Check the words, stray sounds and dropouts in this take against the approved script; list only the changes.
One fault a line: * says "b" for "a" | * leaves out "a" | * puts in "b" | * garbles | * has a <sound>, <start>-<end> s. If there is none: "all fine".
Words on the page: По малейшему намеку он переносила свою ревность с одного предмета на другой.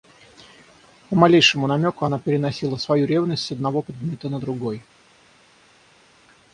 * says "она" for "он"